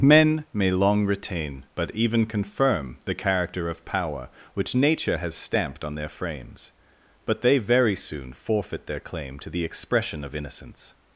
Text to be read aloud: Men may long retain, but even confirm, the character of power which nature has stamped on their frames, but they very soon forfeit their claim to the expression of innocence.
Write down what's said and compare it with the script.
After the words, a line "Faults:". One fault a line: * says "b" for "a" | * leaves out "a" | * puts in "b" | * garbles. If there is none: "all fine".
Men may long retain, but even confirm, the character of power which nature has stamped on their frames, but they very soon forfeit their claim to the expression of innocence.
Faults:
all fine